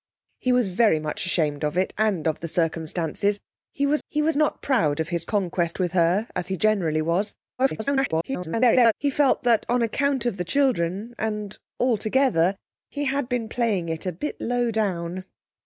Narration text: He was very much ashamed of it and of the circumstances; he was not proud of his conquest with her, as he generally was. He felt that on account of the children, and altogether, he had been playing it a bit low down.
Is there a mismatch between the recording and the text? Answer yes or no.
yes